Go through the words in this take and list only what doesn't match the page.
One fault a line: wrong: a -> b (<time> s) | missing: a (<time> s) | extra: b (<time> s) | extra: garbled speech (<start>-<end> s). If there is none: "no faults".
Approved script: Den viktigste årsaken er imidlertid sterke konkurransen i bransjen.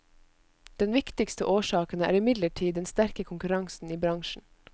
extra: den (2.8 s)